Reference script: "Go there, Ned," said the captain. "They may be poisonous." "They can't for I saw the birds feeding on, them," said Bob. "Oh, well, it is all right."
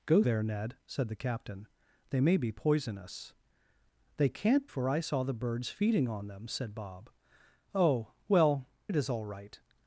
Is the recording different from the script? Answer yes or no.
no